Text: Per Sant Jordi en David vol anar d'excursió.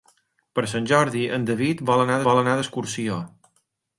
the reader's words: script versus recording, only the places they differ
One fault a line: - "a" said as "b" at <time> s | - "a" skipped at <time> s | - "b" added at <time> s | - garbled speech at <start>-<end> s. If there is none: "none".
- "vol anar" added at 2.3 s